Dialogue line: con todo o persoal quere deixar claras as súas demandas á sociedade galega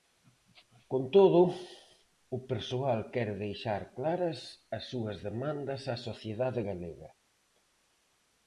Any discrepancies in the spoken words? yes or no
no